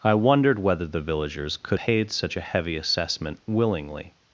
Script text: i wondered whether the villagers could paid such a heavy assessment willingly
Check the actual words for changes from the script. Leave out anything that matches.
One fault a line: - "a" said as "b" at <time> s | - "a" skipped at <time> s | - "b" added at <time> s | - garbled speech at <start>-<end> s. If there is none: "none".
none